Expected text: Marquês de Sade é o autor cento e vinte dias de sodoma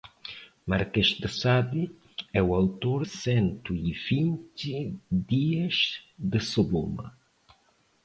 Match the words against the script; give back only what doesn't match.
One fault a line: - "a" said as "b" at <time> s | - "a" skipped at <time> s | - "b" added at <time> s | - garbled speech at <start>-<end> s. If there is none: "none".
none